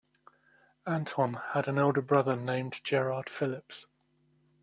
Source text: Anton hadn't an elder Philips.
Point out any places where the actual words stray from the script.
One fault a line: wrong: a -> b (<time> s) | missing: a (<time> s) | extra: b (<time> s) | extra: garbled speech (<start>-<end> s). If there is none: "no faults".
wrong: hadn't -> had (1.5 s)
extra: brother named Gerard (2.0 s)